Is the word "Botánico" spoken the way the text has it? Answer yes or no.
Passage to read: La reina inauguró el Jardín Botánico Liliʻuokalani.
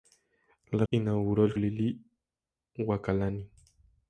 no